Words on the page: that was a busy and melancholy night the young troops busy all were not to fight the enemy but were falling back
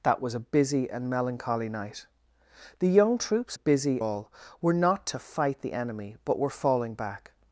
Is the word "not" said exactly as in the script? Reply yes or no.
yes